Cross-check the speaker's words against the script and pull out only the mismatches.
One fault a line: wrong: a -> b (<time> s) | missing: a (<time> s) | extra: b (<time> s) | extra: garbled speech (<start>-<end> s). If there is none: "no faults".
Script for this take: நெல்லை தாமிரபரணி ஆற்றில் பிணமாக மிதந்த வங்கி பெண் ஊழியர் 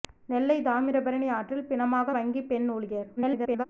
missing: மிதந்த (2.1 s)
extra: garbled speech (3.2-3.7 s)